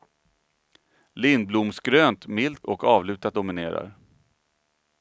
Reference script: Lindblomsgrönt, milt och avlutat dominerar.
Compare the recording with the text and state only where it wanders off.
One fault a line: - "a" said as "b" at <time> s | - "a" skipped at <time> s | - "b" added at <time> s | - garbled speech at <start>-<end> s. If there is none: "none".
none